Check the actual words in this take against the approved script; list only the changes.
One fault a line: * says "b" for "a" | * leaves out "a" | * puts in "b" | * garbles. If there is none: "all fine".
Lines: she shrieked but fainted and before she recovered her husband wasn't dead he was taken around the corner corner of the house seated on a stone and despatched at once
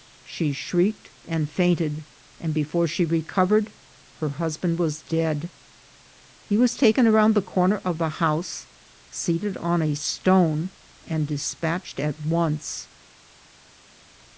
* says "and" for "but"
* says "was" for "wasn't"
* leaves out "corner"